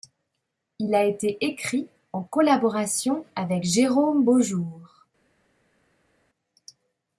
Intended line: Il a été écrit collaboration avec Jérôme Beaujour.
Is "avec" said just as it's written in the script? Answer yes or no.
yes